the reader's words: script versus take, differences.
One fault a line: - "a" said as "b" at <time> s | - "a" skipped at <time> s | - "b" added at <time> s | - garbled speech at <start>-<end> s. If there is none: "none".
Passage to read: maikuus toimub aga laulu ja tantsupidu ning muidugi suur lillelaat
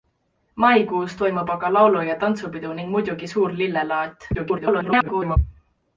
- garbled speech at 4.3-5.4 s